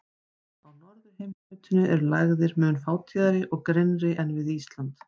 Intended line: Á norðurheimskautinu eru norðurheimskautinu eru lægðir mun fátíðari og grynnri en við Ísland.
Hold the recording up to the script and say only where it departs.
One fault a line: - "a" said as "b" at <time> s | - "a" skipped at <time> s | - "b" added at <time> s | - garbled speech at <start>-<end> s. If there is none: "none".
- "norðurheimskautinu eru" skipped at 2.1 s